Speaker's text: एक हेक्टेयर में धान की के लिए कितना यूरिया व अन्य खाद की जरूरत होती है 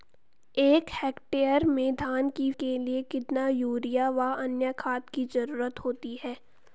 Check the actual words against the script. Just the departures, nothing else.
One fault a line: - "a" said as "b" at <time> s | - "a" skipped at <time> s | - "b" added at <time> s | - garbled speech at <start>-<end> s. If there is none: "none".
none